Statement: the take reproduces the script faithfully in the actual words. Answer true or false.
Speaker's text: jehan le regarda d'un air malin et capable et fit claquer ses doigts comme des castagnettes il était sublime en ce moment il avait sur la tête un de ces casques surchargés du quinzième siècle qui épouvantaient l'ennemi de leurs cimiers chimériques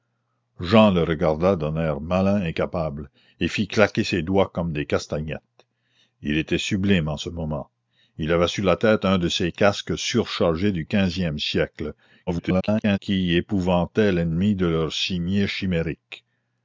false